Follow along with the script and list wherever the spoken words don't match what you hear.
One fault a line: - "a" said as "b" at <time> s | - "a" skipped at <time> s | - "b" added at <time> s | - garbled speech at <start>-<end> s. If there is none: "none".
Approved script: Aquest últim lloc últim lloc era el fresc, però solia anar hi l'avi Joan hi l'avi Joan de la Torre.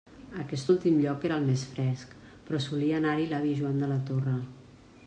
- "últim lloc" skipped at 1.3 s
- "més" added at 1.5 s
- "hi l'avi Joan" skipped at 3.8 s